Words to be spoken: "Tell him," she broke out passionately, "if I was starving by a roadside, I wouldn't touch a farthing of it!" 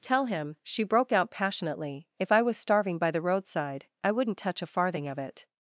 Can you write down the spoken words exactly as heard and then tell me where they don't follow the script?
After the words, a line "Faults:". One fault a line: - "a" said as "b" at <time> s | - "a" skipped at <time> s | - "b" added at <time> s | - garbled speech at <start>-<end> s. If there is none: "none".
"Tell him," she broke out passionately, "if I was starving by the roadside, I wouldn't touch a farthing of it!"
Faults:
- "a" said as "the" at 3.1 s